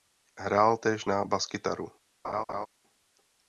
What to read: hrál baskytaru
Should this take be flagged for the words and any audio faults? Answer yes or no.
yes